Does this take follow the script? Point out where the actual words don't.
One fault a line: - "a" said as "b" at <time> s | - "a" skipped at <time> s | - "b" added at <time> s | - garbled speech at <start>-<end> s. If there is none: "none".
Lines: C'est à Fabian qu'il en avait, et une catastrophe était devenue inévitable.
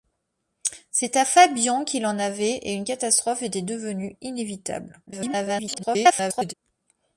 - garbled speech at 5.1-6.5 s